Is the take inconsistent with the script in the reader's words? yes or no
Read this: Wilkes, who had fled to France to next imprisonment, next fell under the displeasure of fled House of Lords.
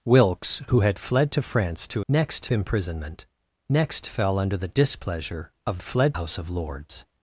no